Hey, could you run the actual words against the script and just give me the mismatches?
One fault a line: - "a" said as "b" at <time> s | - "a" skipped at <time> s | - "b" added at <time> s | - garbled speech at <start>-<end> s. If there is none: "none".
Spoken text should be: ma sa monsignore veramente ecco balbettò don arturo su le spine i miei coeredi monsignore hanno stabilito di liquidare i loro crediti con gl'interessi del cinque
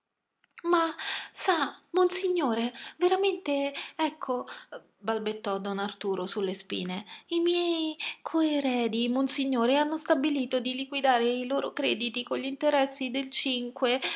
none